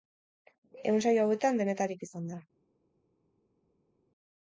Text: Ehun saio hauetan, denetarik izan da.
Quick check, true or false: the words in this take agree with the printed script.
true